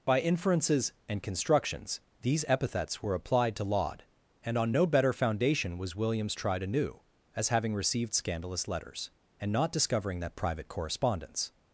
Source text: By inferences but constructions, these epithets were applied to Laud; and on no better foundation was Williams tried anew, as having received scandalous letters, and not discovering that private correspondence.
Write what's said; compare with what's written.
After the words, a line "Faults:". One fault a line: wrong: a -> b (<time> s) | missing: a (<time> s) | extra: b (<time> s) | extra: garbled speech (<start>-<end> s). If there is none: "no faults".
By inferences and constructions, these epithets were applied to Laud; and on no better foundation was Williams tried anew, as having received scandalous letters, and not discovering that private correspondence.
Faults:
wrong: but -> and (1.1 s)